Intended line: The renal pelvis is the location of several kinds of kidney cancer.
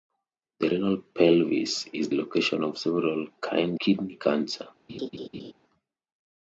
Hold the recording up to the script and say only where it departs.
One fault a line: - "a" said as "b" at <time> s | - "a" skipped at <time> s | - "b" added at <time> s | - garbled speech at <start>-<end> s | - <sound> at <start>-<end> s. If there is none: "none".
- "the" skipped at 2.1 s
- "of" skipped at 3.8 s
- laugh at 4.9-5.5 s